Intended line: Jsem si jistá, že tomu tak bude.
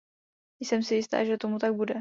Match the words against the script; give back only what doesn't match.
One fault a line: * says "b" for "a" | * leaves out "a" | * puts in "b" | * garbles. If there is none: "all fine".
all fine